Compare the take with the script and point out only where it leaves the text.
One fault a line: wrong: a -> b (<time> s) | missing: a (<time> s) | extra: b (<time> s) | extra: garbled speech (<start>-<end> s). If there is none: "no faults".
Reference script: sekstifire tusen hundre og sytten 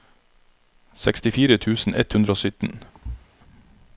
extra: ett (1.9 s)